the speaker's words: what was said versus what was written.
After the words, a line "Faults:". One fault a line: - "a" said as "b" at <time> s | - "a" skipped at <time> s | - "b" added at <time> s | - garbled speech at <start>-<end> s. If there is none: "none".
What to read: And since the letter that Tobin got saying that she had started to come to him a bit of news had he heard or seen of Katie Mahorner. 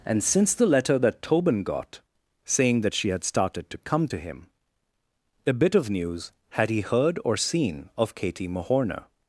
And since the letter that Tobin got saying that she had started to come to him a bit of news had he heard or seen of Katie Mahorner.
Faults:
none